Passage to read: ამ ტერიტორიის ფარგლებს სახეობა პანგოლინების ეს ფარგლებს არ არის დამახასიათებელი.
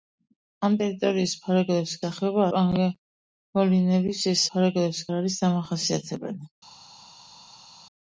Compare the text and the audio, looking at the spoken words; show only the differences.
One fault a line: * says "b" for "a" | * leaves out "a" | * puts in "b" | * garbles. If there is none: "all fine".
all fine